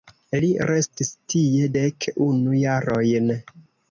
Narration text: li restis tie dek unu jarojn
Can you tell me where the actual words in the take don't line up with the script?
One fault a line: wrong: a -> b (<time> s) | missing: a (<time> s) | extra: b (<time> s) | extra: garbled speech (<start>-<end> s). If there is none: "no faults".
no faults